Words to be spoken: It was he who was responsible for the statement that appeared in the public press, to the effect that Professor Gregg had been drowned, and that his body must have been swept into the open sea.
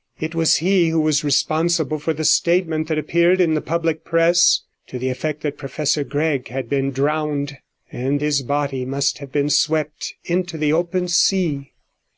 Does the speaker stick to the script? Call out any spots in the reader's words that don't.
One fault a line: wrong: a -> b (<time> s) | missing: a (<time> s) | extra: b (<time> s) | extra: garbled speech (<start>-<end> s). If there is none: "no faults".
missing: that (8.2 s)